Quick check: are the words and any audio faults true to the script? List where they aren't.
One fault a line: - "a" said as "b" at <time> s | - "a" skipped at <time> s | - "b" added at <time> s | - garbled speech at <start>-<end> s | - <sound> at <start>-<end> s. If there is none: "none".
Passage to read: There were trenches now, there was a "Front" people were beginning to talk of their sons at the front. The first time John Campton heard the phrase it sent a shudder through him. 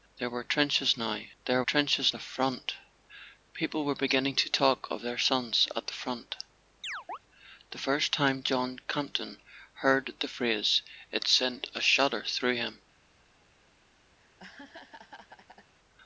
- "was" said as "trenches" at 1.6 s
- chirp at 6.8-7.2 s
- laugh at 14.2-15.7 s